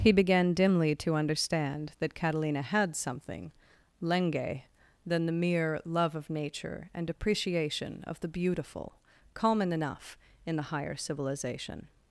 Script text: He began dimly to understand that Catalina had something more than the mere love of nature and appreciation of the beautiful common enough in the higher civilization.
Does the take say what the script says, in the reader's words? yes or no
no